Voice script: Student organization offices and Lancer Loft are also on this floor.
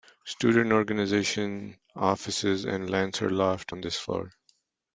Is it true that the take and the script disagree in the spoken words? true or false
true